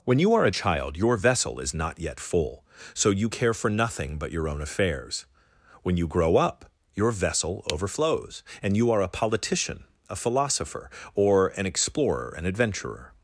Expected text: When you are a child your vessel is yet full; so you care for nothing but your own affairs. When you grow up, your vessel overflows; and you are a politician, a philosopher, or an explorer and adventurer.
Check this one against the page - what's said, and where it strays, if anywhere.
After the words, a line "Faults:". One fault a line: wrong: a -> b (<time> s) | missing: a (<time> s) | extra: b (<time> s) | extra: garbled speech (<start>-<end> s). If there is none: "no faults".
When you are a child your vessel is not yet full; so you care for nothing but your own affairs. When you grow up, your vessel overflows; and you are a politician, a philosopher, or an explorer and adventurer.
Faults:
extra: not (1.7 s)